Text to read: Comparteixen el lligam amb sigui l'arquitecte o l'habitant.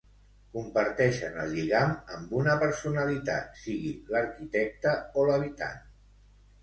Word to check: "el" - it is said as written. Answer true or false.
true